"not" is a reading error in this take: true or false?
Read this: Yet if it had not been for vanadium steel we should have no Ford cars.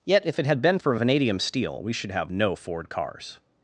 true